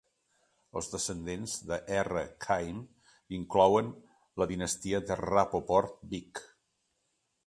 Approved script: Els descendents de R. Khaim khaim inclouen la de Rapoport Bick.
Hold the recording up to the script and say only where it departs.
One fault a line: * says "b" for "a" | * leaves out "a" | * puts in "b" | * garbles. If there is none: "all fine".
* leaves out "khaim"
* puts in "dinastia"